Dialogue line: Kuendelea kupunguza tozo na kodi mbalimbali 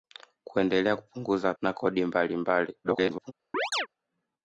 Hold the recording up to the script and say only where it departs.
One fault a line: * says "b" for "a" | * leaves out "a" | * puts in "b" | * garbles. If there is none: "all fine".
* leaves out "tozo"
* garbles